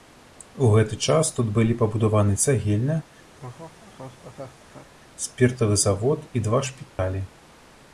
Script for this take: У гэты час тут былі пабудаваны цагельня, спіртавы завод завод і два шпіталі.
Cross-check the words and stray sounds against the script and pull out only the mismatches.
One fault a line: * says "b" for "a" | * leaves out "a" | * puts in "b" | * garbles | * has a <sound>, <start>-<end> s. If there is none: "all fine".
* has a laugh, 3.3-4.9 s
* leaves out "завод"
* has a dropout, 6.9-7.0 s